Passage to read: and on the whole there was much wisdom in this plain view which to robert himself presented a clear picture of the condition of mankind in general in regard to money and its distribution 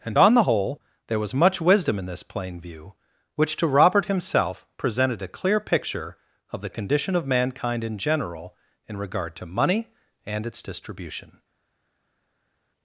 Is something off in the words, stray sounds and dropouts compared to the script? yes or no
no